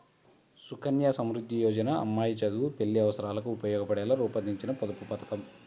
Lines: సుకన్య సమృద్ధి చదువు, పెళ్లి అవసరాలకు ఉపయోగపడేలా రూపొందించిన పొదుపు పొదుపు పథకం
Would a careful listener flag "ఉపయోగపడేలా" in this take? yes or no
no